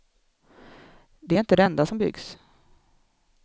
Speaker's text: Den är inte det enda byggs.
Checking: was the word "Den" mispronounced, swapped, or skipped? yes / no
yes